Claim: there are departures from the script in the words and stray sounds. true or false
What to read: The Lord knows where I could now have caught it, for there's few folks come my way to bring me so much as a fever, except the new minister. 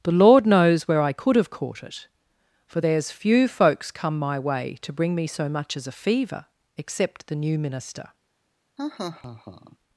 true